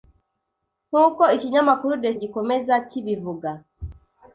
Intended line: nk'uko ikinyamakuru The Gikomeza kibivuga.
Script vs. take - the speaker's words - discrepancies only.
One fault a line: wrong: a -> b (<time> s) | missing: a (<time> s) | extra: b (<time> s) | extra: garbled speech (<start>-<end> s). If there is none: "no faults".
no faults